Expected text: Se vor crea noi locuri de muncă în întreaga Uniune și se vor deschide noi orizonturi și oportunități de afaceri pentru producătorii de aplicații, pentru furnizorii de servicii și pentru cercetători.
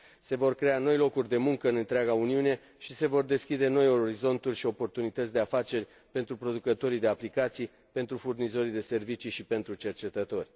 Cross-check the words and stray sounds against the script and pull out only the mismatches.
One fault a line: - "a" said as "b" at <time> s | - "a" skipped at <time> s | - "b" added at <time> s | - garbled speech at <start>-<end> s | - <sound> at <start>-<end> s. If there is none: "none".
none